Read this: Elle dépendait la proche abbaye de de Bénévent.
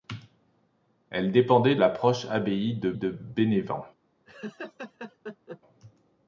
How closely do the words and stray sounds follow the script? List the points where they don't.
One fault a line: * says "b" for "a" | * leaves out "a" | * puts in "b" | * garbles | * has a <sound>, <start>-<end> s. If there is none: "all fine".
* has a laugh, 4.3-5.6 s